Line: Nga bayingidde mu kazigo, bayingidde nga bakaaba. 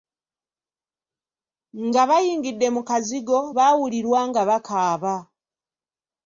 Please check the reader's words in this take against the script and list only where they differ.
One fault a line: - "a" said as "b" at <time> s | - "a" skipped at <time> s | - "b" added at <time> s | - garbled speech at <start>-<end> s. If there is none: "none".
- "bayingidde" said as "baawulirwa" at 3.6 s